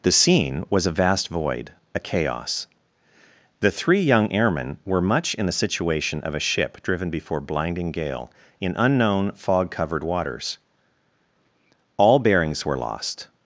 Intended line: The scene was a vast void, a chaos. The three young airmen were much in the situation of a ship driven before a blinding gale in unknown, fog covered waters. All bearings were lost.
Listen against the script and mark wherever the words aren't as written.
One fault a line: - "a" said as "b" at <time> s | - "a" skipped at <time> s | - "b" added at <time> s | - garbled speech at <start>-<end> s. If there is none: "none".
- "a" skipped at 7.4 s